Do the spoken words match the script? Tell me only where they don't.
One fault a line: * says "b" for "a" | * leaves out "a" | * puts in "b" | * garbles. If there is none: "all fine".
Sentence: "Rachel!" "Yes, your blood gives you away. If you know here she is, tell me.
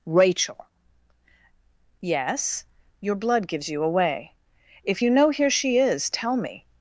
all fine